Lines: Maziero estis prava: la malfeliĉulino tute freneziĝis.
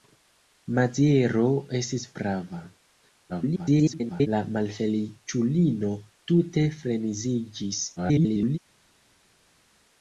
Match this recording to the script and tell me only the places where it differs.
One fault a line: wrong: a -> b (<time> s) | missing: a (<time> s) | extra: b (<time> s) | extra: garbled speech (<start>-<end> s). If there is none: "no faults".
extra: garbled speech (3.3-4.3 s)
extra: garbled speech (8.0-8.6 s)